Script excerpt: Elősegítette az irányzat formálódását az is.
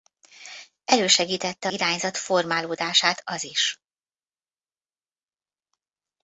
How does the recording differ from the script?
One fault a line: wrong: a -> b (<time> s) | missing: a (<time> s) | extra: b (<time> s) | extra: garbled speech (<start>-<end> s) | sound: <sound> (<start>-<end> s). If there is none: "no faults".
missing: az (1.7 s)